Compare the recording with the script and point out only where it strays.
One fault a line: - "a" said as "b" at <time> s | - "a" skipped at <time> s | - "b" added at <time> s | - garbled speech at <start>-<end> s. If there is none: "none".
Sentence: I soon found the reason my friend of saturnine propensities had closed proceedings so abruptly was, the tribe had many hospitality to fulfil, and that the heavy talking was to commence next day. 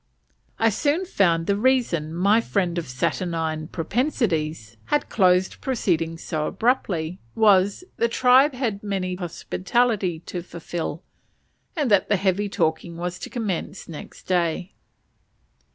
none